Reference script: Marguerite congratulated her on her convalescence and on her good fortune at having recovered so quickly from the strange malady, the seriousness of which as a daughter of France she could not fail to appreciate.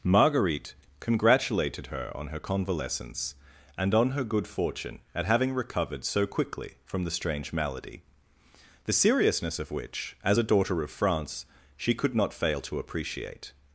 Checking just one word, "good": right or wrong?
right